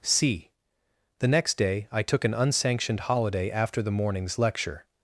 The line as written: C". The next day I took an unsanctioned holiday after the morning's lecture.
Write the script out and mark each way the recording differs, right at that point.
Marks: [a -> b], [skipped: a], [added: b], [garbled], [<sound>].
C". The next day I took an unsanctioned holiday after the morning's lecture.